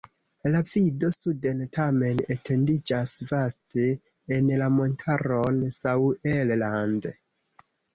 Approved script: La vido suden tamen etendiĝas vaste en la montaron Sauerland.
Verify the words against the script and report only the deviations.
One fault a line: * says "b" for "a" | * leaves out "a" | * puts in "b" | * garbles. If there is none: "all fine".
all fine